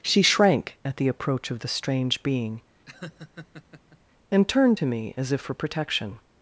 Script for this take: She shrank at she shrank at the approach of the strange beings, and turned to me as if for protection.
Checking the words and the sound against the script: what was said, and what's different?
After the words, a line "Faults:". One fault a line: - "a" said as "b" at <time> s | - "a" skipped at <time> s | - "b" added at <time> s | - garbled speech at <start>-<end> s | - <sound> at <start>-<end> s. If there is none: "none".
She shrank at the approach of the strange being, and turned to me as if for protection.
Faults:
- "she shrank at" skipped at 1.0 s
- "beings" said as "being" at 2.2 s
- laugh at 2.9-4.0 s